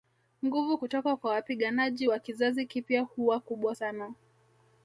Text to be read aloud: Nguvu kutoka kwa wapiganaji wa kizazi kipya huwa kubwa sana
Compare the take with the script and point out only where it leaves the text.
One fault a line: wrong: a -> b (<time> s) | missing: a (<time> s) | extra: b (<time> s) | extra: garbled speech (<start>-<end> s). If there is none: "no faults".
no faults